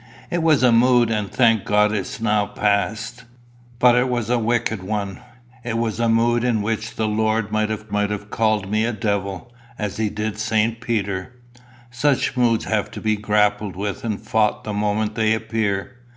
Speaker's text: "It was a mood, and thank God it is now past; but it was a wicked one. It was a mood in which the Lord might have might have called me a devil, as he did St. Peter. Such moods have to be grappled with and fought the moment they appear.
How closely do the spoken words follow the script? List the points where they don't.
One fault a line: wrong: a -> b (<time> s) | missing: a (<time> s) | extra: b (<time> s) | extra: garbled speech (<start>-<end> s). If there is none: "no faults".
no faults